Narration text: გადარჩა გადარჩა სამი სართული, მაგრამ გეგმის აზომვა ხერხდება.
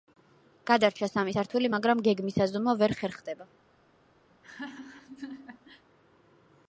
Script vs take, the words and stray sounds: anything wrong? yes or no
yes